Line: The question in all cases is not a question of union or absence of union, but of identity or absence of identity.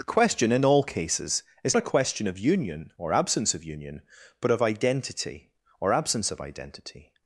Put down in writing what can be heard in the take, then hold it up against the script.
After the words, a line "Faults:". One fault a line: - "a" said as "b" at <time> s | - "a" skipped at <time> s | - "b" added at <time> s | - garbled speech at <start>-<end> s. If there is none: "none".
The question in all cases is a question of union or absence of union, but of identity or absence of identity.
Faults:
- "not" skipped at 1.8 s